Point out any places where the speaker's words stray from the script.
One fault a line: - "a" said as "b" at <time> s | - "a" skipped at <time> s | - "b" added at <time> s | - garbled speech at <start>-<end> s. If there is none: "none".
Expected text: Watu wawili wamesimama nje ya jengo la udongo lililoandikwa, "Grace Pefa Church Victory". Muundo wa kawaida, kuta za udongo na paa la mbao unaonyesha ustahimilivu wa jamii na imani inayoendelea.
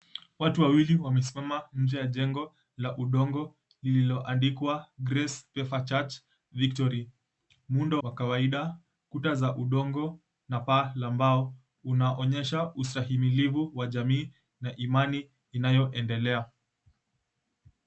none